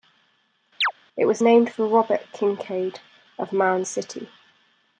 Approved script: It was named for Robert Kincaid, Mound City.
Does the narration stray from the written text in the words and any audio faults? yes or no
yes